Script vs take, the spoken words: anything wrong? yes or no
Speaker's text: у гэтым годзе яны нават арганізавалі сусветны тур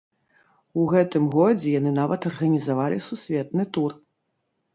no